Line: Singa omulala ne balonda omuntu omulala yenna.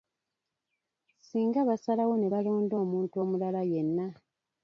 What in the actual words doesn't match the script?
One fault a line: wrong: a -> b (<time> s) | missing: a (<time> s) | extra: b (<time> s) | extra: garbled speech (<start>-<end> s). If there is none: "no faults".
wrong: omulala -> basalawo (1.7 s)